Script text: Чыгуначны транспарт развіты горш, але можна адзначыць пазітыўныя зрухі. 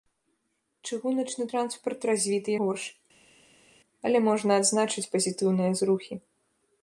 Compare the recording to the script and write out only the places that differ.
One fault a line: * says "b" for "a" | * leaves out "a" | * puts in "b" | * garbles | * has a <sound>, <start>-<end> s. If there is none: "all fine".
all fine